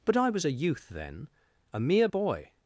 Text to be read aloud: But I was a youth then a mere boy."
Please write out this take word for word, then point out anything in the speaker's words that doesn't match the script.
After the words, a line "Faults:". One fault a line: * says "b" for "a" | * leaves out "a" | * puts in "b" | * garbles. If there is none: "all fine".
But I was a youth then a mere boy."
Faults:
all fine